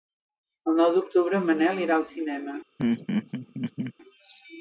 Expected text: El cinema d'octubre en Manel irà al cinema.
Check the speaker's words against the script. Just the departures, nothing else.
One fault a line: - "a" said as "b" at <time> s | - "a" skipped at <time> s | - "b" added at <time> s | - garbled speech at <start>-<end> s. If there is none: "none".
- "cinema" said as "nou" at 0.8 s